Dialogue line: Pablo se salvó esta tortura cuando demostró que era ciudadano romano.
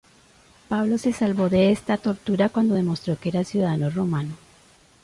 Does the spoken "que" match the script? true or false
true